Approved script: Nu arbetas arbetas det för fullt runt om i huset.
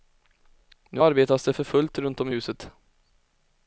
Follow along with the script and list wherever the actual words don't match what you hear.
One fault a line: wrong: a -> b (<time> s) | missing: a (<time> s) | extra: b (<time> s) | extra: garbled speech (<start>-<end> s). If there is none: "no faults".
missing: arbetas (1.4 s)